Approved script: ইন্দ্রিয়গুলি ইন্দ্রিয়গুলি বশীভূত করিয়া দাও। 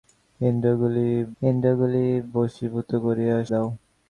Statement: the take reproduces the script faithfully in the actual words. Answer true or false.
true